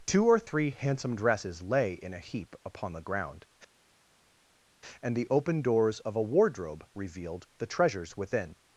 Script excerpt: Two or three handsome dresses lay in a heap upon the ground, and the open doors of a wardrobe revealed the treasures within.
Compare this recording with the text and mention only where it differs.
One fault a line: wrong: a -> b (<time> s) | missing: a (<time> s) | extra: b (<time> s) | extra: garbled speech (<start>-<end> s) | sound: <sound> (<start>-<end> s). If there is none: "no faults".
no faults